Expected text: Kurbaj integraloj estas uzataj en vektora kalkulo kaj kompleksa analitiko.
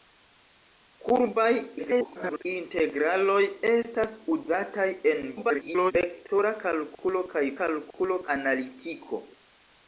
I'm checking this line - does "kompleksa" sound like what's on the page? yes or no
no